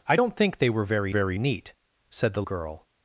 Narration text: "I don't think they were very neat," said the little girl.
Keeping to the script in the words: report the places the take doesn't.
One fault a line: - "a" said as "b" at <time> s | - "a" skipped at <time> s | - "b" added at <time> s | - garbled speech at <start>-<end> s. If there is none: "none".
- "very" added at 1.1 s
- "little" skipped at 2.4 s